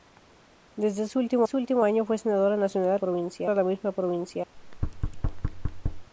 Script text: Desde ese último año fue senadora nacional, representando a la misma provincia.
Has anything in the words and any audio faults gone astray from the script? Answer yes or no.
yes